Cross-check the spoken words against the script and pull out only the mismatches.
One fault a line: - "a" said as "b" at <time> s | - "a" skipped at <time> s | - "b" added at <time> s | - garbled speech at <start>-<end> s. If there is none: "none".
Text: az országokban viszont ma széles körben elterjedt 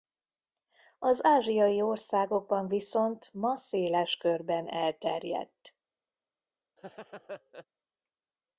- "ázsiai" added at 1.2 s